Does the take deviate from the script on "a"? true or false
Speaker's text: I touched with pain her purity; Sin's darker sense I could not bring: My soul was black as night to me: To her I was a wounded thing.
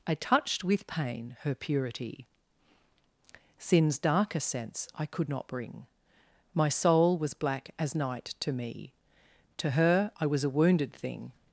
false